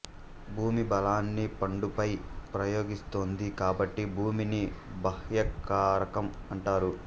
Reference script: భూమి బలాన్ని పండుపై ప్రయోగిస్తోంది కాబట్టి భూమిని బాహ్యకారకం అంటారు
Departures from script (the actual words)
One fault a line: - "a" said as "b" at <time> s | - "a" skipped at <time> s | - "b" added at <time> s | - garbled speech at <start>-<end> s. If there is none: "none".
none